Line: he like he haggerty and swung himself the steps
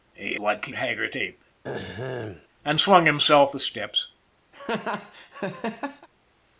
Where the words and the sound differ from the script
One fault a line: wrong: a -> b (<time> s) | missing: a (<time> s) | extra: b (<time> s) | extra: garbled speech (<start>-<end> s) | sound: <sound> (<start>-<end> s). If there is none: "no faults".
sound: throat clearing (1.6-2.5 s)
sound: laugh (4.5-6.1 s)